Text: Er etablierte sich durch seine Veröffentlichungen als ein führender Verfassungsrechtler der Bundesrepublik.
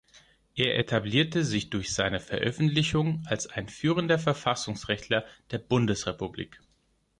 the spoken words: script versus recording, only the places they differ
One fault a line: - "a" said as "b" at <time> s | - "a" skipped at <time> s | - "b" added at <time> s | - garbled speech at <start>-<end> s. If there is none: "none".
none